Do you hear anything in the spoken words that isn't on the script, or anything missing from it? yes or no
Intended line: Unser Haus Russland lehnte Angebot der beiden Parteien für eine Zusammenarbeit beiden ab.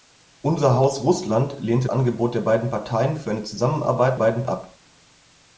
no